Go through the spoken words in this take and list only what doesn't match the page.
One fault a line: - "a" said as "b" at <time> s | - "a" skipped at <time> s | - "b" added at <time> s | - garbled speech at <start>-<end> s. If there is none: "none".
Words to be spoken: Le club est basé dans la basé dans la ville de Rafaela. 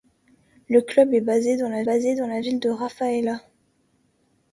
none